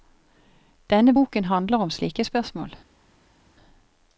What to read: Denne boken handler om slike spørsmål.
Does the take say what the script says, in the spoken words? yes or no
yes